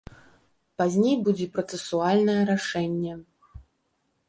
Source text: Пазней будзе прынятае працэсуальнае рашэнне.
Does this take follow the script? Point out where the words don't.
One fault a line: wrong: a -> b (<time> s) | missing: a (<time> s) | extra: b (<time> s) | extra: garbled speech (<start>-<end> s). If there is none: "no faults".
missing: прынятае (1.5 s)